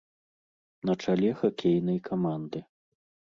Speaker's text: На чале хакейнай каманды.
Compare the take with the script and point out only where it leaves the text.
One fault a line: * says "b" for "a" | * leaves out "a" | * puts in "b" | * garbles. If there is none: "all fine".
all fine